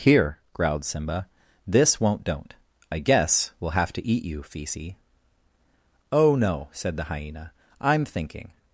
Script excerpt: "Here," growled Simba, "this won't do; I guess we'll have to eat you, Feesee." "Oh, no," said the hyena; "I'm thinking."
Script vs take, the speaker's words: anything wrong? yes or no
yes